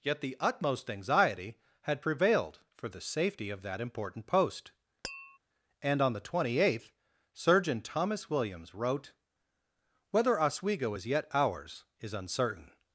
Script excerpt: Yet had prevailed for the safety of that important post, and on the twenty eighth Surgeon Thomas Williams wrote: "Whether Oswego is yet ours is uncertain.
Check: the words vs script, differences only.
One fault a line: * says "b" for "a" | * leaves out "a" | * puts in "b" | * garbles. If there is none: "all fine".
* puts in "the utmost anxiety"